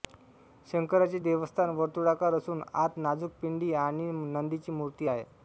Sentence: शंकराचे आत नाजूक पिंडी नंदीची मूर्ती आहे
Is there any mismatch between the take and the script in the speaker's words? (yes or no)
yes